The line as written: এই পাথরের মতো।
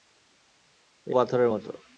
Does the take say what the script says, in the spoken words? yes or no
yes